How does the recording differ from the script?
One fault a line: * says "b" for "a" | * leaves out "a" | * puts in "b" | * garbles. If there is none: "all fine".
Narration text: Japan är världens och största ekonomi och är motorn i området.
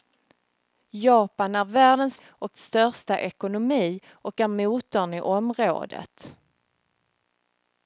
all fine